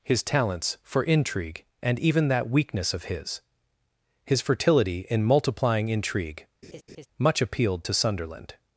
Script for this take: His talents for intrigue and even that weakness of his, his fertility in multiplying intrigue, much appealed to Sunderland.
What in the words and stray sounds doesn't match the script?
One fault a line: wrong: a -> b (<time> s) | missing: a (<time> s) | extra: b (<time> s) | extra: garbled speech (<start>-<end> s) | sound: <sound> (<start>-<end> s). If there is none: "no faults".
sound: laugh (6.6-7.1 s)